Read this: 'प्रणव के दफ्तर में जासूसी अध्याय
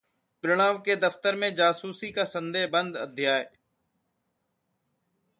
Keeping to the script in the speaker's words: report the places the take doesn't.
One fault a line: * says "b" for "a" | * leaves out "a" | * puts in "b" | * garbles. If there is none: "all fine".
* puts in "का संदेह बंद"